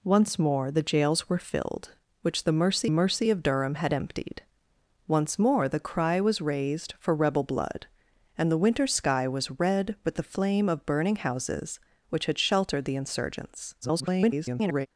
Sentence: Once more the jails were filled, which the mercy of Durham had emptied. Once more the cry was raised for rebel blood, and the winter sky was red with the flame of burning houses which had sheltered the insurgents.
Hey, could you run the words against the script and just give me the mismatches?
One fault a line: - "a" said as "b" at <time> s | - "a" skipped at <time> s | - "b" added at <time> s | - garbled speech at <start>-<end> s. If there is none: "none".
- "mercy" added at 2.9 s
- garbled speech at 13.8-14.9 s